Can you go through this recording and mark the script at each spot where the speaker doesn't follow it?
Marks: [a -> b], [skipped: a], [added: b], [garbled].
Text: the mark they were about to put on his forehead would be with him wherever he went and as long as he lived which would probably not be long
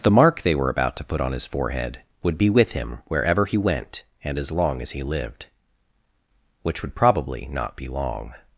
the mark they were about to put on his forehead would be with him wherever he went and as long as he lived which would probably not be long